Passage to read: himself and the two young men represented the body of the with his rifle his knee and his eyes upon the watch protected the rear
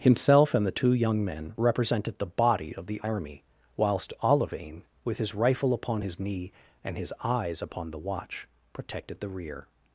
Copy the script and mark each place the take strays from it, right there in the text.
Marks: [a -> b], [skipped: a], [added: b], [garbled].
himself and the two young men represented the body of the [added: army whilst olivain] with his rifle [added: upon] his knee and his eyes upon the watch protected the rear